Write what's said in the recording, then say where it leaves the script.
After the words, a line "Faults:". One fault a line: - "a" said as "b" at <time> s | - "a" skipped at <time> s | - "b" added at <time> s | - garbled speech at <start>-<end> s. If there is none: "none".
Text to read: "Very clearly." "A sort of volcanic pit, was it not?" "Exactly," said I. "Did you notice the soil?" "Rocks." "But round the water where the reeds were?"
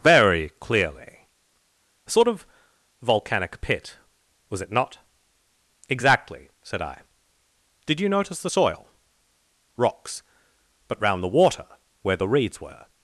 "Very clearly." "A sort of volcanic pit, was it not?" "Exactly," said I. "Did you notice the soil?" "Rocks." "But round the water where the reeds were?"
Faults:
none